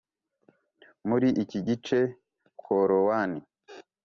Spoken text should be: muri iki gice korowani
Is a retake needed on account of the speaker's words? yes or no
no